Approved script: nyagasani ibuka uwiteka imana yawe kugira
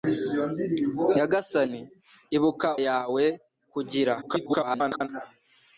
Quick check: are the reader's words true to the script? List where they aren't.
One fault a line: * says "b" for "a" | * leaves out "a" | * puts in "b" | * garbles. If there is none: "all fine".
* leaves out "uwiteka imana"
* garbles